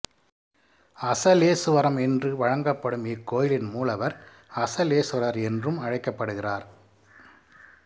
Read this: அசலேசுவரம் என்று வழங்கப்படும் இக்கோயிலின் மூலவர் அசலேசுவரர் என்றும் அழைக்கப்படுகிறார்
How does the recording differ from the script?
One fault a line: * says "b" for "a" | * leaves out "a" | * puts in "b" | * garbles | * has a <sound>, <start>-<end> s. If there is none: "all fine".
all fine